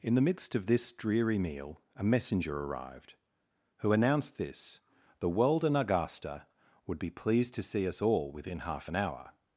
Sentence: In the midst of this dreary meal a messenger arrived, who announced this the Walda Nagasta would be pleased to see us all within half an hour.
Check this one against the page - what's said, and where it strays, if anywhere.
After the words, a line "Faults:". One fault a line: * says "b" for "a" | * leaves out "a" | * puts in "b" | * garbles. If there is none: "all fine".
In the midst of this dreary meal a messenger arrived, who announced this the Walda Nagasta would be pleased to see us all within half an hour.
Faults:
all fine